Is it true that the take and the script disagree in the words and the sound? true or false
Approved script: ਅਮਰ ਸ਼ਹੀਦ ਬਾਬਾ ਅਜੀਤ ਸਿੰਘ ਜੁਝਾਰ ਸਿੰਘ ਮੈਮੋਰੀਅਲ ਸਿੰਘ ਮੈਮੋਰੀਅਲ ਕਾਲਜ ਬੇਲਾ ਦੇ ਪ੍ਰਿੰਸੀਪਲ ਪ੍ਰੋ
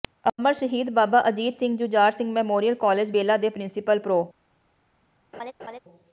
true